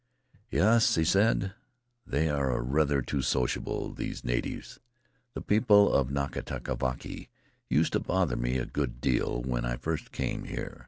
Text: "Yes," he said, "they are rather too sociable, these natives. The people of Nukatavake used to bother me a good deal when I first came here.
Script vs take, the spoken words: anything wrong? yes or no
no